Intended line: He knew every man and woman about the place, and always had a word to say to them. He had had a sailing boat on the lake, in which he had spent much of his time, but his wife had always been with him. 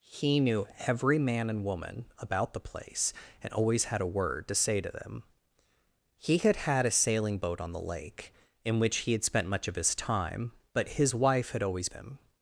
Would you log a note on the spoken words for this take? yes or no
yes